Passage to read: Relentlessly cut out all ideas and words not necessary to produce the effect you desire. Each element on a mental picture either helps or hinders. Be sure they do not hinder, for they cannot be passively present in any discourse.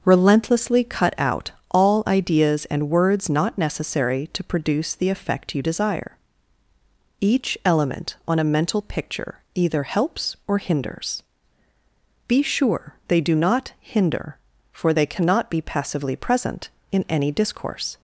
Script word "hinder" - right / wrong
right